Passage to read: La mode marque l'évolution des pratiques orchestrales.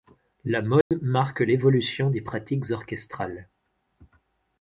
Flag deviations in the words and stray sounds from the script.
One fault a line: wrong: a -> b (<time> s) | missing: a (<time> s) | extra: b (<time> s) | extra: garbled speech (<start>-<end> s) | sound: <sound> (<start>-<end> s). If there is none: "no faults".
sound: dropout (0.8-0.9 s)